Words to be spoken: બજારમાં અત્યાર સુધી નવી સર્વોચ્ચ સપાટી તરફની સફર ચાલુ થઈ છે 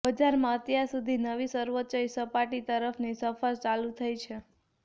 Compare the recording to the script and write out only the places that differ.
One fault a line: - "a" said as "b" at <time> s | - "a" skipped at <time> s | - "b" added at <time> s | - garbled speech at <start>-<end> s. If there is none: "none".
none